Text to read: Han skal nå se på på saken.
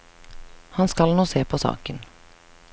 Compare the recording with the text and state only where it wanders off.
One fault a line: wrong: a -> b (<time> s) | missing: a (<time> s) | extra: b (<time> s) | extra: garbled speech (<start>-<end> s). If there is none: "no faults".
missing: på (1.6 s)